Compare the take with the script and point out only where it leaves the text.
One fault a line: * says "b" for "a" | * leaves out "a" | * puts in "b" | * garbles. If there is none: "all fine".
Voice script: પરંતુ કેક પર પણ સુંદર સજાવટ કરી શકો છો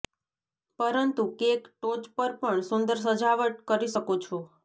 * puts in "ટોચ"